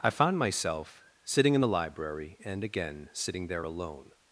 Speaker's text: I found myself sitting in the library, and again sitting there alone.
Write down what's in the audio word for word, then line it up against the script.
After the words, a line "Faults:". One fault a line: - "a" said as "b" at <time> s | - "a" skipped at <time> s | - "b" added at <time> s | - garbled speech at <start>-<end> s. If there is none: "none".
I found myself sitting in the library, and again sitting there alone.
Faults:
none